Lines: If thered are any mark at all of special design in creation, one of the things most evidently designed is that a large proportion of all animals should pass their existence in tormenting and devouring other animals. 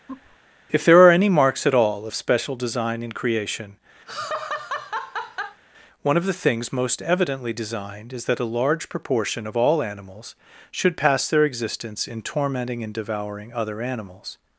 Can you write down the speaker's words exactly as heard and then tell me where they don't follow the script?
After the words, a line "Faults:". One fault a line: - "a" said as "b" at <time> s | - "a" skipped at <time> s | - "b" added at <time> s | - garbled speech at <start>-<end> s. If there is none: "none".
If there are any marks at all of special design in creation, one of the things most evidently designed is that a large proportion of all animals should pass their existence in tormenting and devouring other animals.
Faults:
- "thered" said as "there" at 0.8 s
- "mark" said as "marks" at 1.3 s